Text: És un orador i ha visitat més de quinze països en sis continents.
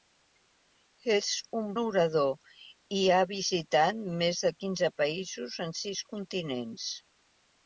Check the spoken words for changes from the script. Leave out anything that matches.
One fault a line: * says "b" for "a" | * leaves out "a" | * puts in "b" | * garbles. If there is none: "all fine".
all fine